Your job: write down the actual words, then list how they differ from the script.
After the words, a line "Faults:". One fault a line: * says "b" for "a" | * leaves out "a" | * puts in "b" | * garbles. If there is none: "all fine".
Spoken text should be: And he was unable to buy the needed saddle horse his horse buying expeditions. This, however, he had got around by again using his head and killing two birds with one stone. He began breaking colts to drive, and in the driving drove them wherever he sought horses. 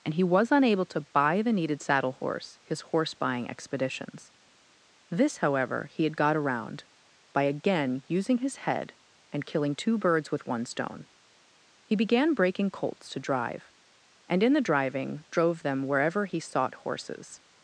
And he was unable to buy the needed saddle horse his horse buying expeditions. This, however, he had got around by again using his head and killing two birds with one stone. He began breaking colts to drive, and in the driving drove them wherever he sought horses.
Faults:
all fine